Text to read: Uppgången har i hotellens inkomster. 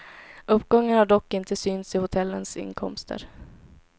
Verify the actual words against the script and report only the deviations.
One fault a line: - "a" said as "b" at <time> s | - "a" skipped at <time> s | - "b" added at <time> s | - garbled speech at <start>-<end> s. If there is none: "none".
- "dock inte synts" added at 1.1 s